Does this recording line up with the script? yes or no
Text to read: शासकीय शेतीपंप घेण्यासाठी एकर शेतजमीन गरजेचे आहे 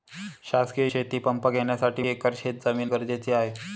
yes